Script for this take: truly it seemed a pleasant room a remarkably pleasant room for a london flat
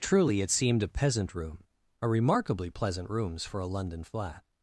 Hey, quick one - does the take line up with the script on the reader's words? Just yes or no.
no